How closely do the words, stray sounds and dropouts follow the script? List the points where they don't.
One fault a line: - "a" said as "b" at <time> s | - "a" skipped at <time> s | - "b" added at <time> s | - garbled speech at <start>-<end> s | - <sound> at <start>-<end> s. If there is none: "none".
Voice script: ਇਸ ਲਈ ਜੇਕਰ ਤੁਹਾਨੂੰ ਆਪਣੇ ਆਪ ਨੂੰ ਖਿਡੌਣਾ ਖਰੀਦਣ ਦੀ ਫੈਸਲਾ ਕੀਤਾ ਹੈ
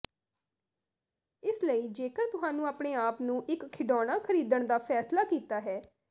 - "ਇੱਕ" added at 3.5 s
- "ਦੀ" said as "ਦਾ" at 4.7 s